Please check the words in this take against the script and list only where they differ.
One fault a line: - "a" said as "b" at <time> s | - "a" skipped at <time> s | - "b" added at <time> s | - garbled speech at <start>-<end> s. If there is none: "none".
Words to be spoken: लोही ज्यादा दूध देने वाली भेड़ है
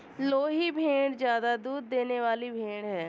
- "भेड़" added at 0.7 s